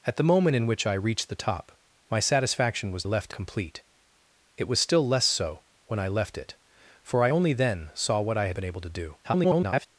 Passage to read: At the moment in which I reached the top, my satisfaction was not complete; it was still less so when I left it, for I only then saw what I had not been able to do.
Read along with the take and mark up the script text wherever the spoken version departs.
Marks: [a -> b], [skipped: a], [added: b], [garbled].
At the moment in which I reached the top, my satisfaction was [not -> left] complete; it was still less so when I left it, for I only then saw what I had [skipped: not] been able to do. [garbled]